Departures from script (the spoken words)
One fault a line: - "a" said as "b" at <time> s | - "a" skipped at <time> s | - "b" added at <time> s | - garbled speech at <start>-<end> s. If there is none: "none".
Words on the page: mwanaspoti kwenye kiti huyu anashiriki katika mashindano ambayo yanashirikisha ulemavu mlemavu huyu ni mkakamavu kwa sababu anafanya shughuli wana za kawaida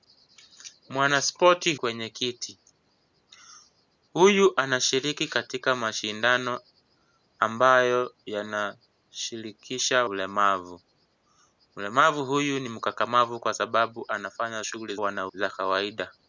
none